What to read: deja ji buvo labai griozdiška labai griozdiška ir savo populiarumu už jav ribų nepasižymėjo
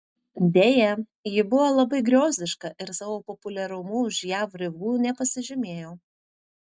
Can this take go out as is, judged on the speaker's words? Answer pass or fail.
fail